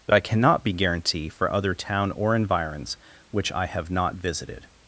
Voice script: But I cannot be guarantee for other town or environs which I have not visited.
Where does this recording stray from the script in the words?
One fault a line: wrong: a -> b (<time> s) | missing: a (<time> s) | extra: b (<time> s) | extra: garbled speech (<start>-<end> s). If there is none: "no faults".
no faults